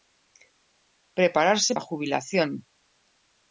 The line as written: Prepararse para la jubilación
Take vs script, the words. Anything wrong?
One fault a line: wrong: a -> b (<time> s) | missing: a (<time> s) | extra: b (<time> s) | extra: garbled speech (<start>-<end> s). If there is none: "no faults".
missing: para (1.8 s)